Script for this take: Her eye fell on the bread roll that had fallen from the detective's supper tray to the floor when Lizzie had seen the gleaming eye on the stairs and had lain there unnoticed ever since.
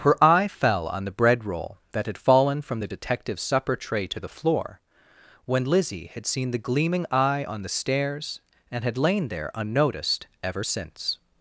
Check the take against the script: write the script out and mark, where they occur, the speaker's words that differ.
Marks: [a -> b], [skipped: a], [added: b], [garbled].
Her eye fell on the bread roll that had fallen from the detective's supper tray to the floor when Lizzie had seen the gleaming eye on the stairs and had lain there unnoticed ever since.